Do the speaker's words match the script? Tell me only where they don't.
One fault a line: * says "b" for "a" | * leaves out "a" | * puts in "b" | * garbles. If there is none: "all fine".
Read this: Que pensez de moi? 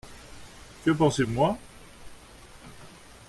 all fine